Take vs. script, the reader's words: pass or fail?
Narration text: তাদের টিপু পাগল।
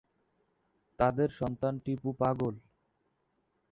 fail